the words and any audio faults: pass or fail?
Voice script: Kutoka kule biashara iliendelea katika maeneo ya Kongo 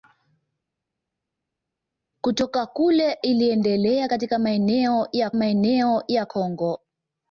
fail